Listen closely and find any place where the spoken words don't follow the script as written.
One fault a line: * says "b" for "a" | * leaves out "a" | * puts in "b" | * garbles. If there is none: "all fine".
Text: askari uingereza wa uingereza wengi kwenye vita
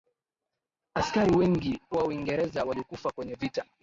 * says "wengi" for "uingereza"
* says "walikufa" for "wengi"